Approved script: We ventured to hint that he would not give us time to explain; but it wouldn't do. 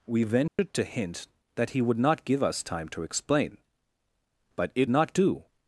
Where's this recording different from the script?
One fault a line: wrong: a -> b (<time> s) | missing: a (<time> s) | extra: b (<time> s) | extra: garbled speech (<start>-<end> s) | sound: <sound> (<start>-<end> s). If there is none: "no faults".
sound: dropout (0.5-0.6 s)
wrong: wouldn't -> not (4.9 s)